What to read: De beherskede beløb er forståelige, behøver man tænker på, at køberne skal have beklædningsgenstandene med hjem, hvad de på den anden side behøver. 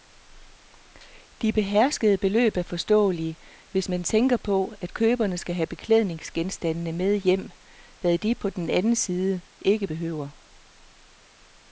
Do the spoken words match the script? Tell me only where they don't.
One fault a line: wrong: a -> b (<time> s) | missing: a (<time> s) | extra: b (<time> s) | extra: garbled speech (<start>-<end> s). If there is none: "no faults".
wrong: behøver -> hvis (3.7 s)
extra: ikke (9.6 s)